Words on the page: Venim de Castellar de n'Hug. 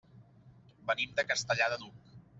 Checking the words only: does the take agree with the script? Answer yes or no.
yes